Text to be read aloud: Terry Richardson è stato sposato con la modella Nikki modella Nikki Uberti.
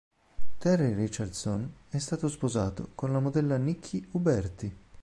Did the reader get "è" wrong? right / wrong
right